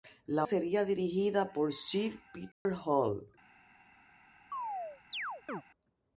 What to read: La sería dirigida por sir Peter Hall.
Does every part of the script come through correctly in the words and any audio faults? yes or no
no